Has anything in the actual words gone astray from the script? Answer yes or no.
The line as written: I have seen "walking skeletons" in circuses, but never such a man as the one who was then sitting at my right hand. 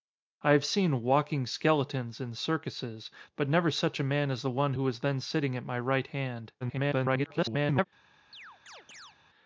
yes